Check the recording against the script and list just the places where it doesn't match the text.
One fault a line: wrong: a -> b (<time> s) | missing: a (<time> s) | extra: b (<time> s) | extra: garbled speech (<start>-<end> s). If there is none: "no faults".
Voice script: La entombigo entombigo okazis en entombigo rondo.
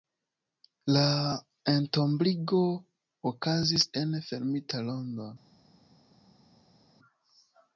missing: entombigo (2.6 s)
wrong: entombigo -> fermita (4.3 s)